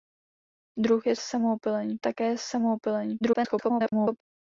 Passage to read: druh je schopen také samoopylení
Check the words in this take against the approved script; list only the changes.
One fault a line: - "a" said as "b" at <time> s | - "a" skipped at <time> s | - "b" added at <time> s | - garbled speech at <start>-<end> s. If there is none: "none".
- "schopen" said as "samoopylení" at 1.2 s
- garbled speech at 3.2-4.2 s